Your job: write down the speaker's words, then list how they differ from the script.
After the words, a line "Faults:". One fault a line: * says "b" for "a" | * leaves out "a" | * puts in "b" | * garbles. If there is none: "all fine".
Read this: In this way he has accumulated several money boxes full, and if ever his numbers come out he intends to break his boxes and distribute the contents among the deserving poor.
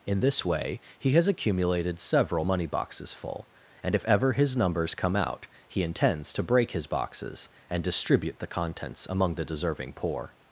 In this way he has accumulated several money boxes full, and if ever his numbers come out he intends to break his boxes and distribute the contents among the deserving poor.
Faults:
all fine